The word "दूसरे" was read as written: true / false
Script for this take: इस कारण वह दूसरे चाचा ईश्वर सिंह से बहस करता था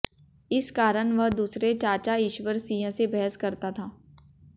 true